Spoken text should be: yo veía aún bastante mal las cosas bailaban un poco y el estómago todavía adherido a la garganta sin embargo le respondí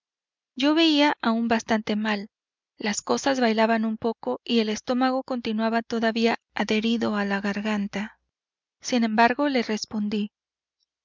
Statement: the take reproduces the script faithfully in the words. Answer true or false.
false